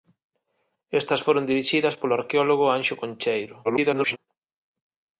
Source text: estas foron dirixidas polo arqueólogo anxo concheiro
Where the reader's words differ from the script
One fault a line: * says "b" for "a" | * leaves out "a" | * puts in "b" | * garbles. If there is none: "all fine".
* garbles